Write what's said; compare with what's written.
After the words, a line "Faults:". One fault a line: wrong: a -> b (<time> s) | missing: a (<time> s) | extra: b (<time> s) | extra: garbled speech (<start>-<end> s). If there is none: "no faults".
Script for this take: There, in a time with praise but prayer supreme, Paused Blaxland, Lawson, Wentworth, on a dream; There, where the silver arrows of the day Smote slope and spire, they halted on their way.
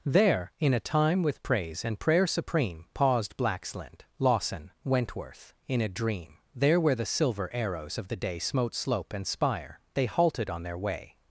There, in a time with praise and prayer supreme, Paused Blaxland, Lawson, Wentworth, in a dream; There, where the silver arrows of the day Smote slope and spire, they halted on their way.
Faults:
wrong: but -> and (1.9 s)
wrong: on -> in (5.7 s)